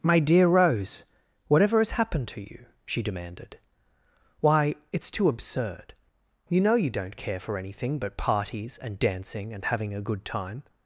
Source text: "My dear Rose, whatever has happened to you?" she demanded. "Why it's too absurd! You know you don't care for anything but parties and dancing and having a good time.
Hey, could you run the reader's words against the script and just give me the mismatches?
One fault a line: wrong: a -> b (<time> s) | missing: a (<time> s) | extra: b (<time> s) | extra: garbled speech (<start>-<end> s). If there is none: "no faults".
no faults